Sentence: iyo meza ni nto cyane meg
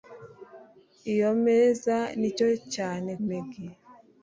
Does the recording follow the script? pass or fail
pass